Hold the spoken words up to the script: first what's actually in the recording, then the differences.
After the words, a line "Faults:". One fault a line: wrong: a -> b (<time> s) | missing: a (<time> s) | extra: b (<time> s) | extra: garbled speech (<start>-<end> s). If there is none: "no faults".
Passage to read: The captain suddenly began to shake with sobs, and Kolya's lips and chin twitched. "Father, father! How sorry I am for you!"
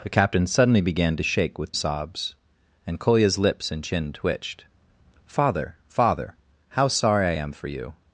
The captain suddenly began to shake with sobs, and Kolya's lips and chin twitched. "Father, father! How sorry I am for you!"
Faults:
no faults